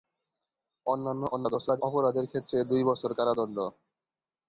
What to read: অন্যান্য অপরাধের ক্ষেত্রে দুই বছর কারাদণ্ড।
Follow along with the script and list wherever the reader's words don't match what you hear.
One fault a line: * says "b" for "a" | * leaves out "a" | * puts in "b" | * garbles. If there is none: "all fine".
* garbles